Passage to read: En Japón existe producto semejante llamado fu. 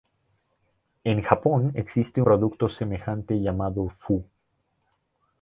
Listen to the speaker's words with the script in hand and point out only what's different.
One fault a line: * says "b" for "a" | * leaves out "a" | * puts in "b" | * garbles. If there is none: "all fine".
all fine